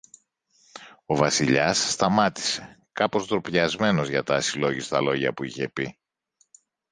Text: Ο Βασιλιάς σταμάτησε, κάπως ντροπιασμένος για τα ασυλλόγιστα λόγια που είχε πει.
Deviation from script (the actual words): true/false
false